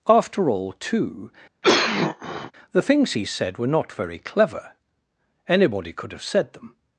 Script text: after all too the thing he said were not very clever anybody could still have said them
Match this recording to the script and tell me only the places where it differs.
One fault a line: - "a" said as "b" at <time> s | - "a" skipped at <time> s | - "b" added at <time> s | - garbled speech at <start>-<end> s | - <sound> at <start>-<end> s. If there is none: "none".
- cough at 1.6-2.5 s
- "thing" said as "things" at 2.8 s
- "still" skipped at 6.1 s